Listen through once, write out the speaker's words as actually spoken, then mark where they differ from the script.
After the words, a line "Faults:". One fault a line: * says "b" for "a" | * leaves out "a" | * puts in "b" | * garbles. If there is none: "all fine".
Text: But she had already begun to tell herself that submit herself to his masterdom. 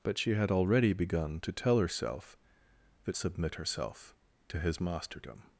But she had already begun to tell herself that submit herself to his masterdom.
Faults:
all fine